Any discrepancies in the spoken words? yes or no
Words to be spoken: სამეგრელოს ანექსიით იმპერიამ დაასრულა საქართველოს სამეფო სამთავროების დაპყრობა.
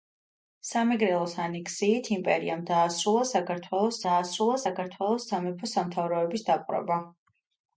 yes